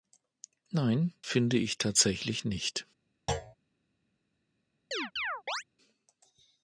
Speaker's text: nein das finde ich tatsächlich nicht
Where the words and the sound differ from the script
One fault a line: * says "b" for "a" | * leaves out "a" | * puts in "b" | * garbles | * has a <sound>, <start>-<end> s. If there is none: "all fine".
* leaves out "das"
* has a thud, 3.3-3.6 s
* has a chirp, 4.9-5.6 s